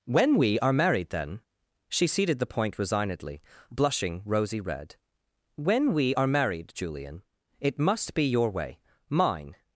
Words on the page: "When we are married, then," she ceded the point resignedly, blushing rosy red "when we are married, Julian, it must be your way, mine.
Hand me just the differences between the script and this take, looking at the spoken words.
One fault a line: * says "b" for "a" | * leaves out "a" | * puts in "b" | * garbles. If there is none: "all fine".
all fine